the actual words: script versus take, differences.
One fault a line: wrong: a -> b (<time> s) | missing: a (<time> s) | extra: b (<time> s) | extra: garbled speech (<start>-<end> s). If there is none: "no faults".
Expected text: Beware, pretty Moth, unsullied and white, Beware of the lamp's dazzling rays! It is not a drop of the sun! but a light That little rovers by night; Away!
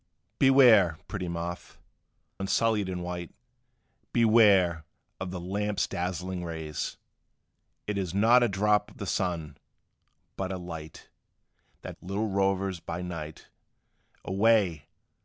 no faults